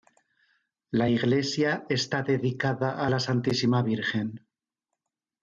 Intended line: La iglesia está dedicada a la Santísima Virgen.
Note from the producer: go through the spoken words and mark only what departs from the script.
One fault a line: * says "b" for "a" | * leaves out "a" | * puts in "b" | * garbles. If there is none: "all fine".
all fine